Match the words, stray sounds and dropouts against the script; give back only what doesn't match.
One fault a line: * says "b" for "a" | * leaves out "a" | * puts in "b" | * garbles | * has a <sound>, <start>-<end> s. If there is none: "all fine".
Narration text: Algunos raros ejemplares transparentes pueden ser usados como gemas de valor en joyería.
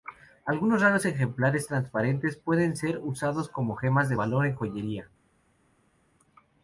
all fine